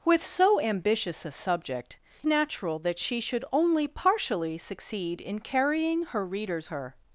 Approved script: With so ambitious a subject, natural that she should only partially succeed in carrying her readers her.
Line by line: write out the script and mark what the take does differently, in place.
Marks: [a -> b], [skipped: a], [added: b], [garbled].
With so ambitious a subject, natural that she should only partially succeed in carrying her readers her.